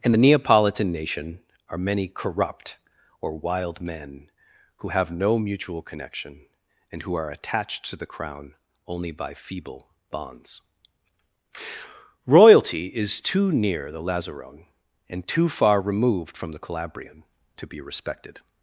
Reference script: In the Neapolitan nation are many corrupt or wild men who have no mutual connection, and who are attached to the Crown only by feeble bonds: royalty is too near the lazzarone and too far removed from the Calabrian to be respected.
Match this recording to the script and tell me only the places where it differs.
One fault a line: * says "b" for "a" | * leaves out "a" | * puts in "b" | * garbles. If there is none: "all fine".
all fine